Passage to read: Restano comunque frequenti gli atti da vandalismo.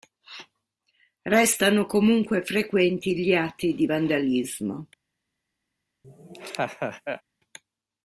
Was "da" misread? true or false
true